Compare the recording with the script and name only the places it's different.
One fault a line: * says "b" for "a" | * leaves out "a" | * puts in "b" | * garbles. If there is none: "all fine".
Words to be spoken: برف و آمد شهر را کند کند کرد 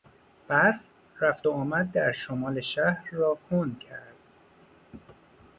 * puts in "رفت"
* puts in "در شمال"
* leaves out "کند"